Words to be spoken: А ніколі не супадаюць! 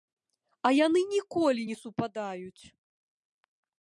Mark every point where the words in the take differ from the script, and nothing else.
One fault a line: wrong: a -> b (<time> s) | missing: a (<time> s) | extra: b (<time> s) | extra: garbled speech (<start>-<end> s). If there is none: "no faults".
extra: яны (0.8 s)